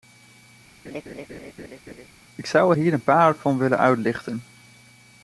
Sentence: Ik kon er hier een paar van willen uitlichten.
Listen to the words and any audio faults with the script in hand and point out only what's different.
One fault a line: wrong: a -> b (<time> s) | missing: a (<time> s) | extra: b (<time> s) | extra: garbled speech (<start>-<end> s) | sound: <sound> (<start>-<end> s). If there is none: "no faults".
sound: laugh (0.8-2.1 s)
wrong: kon -> zou (2.5 s)